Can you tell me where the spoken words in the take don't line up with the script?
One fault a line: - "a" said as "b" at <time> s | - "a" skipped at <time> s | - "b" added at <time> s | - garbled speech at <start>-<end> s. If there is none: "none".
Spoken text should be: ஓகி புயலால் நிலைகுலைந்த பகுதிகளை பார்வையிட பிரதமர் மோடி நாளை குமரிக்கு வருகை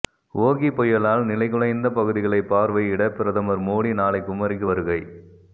none